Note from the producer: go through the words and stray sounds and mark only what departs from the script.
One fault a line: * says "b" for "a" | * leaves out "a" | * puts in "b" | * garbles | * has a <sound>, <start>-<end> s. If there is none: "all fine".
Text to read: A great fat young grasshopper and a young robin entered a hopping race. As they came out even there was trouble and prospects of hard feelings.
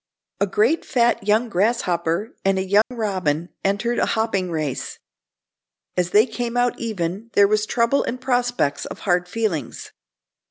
* has a dropout, 2.8-2.9 s